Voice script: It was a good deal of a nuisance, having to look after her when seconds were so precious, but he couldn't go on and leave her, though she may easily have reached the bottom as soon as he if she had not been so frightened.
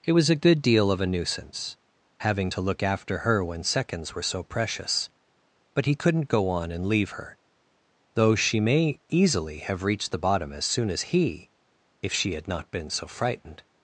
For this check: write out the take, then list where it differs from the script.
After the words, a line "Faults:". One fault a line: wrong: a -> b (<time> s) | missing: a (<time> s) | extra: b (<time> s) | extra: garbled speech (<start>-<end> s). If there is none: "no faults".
It was a good deal of a nuisance, having to look after her when seconds were so precious, but he couldn't go on and leave her, though she may easily have reached the bottom as soon as he if she had not been so frightened.
Faults:
no faults